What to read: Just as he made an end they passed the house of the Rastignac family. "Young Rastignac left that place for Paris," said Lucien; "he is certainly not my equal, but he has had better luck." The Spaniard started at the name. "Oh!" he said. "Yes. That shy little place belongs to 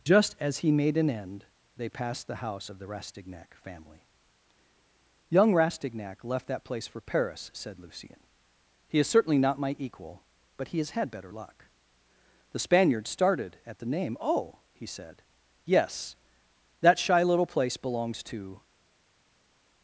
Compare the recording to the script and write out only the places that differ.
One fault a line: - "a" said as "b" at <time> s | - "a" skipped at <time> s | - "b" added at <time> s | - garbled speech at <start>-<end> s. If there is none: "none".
none